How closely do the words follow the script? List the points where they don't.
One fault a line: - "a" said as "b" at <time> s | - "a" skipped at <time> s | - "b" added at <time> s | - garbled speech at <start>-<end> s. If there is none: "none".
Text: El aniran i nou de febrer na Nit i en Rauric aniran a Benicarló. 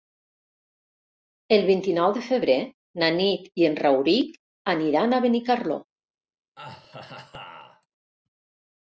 - "aniran" said as "vint" at 1.7 s